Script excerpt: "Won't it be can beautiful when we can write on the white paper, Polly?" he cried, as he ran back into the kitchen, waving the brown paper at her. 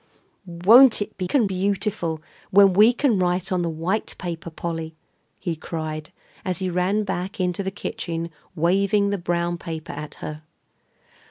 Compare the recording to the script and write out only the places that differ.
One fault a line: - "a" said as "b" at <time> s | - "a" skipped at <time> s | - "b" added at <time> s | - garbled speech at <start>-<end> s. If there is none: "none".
none